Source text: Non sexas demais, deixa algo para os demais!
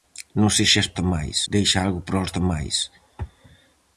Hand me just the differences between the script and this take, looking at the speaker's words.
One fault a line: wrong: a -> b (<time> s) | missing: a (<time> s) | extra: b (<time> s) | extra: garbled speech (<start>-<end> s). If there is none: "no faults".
no faults